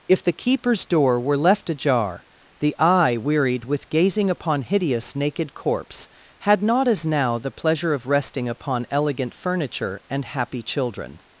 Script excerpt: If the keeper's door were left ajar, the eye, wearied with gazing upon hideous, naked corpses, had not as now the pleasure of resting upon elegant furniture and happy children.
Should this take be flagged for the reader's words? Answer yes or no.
yes